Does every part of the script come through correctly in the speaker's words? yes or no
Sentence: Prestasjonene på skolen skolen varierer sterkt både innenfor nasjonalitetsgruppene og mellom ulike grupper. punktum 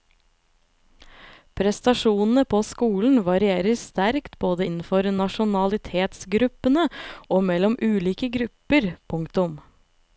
no